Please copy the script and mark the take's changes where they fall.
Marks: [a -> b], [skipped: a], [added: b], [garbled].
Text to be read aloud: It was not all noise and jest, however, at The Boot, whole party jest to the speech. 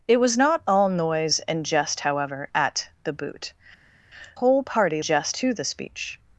It was not all noise and jest, however, at The Boot, whole party jest to the speech.